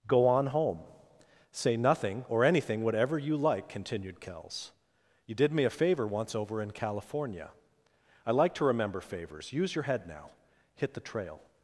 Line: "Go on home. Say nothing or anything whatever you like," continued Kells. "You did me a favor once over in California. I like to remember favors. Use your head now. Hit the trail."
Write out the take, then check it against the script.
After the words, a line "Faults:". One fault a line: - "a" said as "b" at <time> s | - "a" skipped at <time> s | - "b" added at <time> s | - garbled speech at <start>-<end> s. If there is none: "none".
"Go on home. Say nothing or anything whatever you like," continued Kells. "You did me a favor once over in California. I like to remember favors. Use your head now. Hit the trail."
Faults:
none